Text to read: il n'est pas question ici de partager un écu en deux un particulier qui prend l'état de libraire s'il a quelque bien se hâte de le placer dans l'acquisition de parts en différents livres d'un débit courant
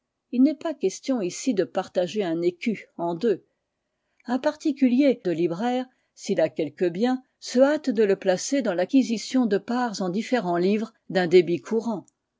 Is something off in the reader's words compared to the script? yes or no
yes